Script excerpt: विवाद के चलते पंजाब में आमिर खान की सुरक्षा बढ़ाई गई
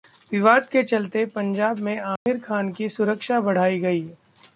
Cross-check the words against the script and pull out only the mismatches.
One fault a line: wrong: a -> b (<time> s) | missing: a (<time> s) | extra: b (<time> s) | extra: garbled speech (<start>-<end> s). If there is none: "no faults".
no faults